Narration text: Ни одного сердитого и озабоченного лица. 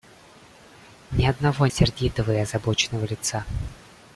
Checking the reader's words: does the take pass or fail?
pass